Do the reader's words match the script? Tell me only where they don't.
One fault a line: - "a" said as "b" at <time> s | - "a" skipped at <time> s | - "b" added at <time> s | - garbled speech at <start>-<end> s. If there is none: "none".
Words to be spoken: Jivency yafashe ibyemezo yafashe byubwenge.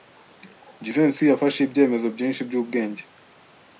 - "yafashe" said as "byinshi" at 2.2 s